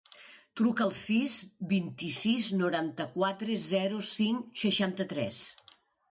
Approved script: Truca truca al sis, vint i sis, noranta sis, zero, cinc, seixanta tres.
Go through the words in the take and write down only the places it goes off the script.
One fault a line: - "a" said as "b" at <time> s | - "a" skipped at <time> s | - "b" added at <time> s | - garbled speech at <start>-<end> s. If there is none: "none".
- "truca" skipped at 0.8 s
- "sis" said as "quatre" at 3.2 s